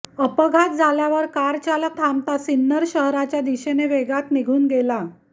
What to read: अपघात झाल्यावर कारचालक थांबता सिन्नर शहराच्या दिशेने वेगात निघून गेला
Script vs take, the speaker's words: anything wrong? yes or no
no